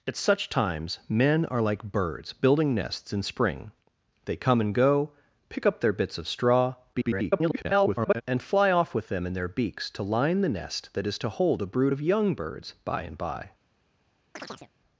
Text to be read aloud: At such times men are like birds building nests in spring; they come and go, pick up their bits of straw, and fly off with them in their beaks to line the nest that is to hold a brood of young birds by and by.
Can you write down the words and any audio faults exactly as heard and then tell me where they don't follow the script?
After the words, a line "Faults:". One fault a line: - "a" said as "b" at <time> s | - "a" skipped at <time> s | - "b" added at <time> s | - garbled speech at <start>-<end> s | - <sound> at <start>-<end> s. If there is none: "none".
At such times men are like birds building nests in spring; they come and go, pick up their bits of straw, [garbled] and fly off with them in their beaks to line the nest that is to hold a brood of young birds by and by.
Faults:
- garbled speech at 6.9-8.2 s
- chirp at 14.4-14.7 s